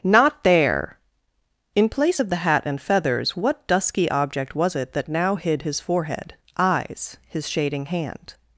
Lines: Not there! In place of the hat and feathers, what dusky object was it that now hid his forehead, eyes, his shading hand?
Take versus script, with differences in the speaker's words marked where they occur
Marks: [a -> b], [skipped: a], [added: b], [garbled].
Not there! In place of the hat and feathers, what dusky object was it that now hid his forehead, eyes, his shading hand?